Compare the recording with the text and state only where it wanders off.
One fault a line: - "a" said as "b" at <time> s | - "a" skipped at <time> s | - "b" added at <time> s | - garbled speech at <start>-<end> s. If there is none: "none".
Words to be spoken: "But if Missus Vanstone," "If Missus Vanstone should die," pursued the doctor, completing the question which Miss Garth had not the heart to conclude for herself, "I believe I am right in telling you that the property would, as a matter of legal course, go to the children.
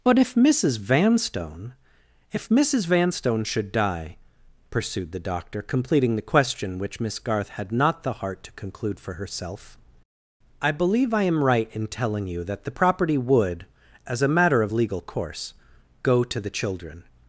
none